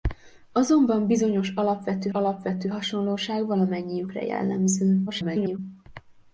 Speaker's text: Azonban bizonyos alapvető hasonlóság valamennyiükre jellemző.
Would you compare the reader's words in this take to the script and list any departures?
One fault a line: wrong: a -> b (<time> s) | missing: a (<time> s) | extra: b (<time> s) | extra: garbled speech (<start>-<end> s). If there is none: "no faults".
extra: alapvető (2.1 s)
extra: garbled speech (5.1-5.6 s)